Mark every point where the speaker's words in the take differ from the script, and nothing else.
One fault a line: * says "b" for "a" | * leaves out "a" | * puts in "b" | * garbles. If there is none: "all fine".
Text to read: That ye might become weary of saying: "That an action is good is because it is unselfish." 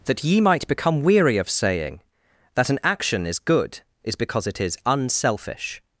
all fine